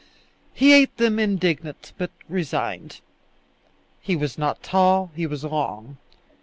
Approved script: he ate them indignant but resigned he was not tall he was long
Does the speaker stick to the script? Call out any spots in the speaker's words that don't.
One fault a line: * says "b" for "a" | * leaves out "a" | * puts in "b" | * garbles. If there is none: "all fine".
all fine